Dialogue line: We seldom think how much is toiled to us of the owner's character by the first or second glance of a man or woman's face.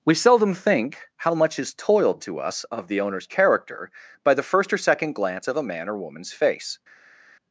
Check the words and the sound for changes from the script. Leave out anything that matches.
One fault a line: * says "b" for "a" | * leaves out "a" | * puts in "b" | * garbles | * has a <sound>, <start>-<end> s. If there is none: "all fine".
all fine